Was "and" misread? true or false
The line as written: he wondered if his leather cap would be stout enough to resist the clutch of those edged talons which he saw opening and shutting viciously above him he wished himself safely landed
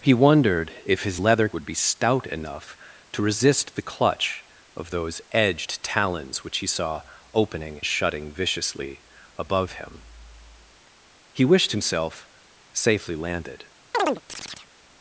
true